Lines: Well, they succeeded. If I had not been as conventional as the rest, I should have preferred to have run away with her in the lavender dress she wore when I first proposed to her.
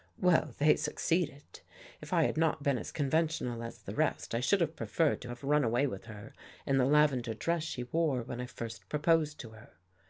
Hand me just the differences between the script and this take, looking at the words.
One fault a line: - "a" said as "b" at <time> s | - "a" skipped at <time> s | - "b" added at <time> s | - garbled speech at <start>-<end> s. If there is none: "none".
none